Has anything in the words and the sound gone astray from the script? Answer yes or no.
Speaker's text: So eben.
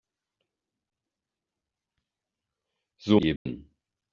yes